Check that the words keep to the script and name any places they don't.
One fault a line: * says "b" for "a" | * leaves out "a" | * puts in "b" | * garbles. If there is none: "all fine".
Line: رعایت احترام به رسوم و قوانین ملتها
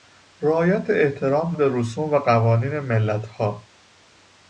all fine